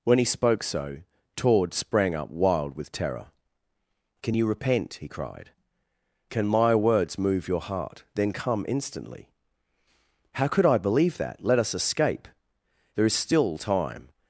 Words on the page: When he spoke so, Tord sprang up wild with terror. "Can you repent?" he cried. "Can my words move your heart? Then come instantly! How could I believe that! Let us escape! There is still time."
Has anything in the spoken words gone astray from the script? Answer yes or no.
no